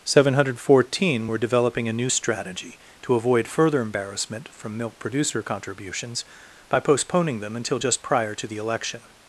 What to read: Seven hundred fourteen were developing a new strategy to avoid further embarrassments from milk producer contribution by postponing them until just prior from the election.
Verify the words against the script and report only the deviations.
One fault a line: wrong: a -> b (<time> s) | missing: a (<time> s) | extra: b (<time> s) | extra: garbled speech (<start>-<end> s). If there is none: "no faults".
wrong: embarrassments -> embarrassment (3.8 s)
wrong: contribution -> contributions (5.4 s)
wrong: from -> to (8.3 s)